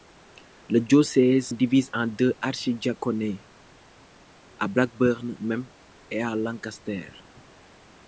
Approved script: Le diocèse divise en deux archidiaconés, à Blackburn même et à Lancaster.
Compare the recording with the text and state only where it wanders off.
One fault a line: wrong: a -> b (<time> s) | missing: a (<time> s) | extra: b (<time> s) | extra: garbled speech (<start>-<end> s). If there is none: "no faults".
no faults